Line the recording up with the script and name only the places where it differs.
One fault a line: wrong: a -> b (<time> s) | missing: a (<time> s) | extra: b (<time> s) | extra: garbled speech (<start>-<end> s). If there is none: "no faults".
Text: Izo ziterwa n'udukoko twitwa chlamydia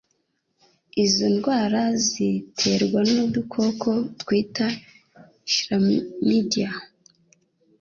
extra: ndwara (1.3 s)